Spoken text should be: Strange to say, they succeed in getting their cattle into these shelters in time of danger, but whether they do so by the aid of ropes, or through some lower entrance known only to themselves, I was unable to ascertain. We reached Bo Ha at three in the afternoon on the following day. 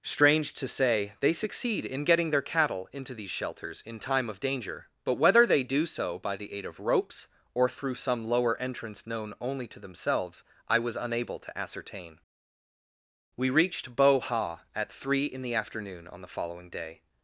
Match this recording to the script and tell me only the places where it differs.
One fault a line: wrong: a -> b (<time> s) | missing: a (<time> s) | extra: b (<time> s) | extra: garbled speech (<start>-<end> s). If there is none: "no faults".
no faults